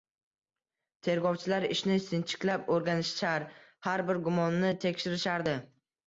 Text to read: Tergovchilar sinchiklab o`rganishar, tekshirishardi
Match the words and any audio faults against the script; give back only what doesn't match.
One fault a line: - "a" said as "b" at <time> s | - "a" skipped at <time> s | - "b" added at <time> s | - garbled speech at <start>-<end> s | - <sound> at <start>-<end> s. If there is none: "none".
- "ishni" added at 1.7 s
- "har bir gumonni" added at 3.9 s